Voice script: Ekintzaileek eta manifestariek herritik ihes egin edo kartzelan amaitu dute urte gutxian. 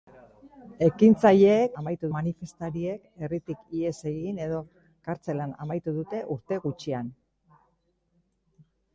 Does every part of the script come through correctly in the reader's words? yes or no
no